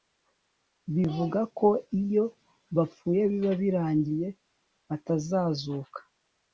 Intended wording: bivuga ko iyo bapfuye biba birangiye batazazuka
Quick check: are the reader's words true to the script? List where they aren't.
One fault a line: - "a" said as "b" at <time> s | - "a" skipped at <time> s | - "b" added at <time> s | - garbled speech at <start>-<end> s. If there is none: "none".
none